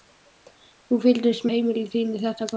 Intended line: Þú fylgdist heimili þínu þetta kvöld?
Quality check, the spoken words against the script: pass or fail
pass